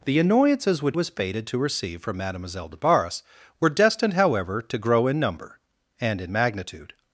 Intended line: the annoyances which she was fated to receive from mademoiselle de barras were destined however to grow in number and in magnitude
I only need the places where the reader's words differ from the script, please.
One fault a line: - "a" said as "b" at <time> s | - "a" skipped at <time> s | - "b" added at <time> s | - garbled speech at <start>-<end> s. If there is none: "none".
- "she" skipped at 1.0 s